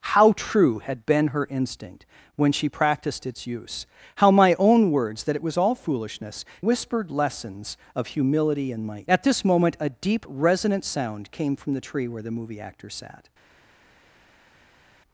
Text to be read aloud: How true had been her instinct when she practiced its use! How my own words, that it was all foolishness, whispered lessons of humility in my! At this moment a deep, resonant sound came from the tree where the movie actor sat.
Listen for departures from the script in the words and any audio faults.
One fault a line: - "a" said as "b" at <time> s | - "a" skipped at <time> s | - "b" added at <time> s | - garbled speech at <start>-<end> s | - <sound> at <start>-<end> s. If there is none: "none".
none